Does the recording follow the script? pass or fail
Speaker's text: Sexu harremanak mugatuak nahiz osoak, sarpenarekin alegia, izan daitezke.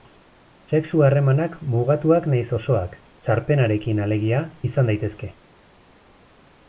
pass